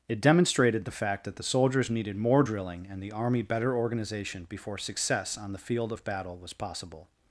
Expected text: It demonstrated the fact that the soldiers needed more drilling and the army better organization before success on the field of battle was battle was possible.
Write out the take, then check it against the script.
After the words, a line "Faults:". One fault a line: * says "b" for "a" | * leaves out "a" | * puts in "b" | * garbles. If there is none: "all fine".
It demonstrated the fact that the soldiers needed more drilling and the army better organization before success on the field of battle was possible.
Faults:
* leaves out "battle was"